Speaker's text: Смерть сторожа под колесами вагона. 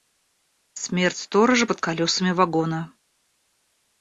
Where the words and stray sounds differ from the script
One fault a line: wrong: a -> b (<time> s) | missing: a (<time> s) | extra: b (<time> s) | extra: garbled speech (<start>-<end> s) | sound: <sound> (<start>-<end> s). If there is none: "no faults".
no faults